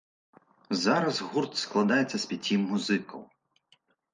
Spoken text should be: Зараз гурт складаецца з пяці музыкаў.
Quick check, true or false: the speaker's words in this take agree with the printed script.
true